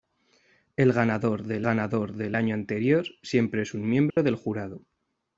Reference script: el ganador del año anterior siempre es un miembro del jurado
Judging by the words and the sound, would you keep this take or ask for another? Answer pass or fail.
fail